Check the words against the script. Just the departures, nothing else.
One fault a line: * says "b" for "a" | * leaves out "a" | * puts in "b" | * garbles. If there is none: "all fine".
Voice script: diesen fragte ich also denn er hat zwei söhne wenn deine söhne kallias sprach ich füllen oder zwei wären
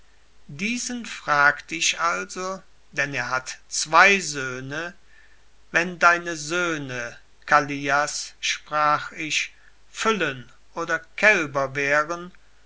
* says "kälber" for "zwei"